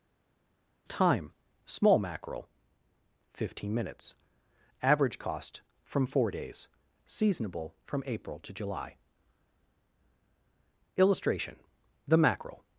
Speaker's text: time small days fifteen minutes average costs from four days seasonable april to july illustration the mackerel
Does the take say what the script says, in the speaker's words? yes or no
no